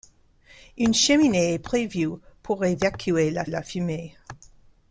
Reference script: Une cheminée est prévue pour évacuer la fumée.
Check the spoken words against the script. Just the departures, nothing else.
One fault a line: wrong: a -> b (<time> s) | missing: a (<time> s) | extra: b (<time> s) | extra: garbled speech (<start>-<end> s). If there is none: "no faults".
extra: la (3.5 s)